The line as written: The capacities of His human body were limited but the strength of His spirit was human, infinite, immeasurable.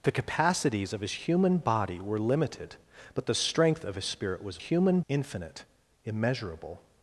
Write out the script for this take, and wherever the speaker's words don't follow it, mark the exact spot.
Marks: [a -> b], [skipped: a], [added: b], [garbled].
The capacities of His human body were limited but the strength of His spirit was human, infinite, immeasurable.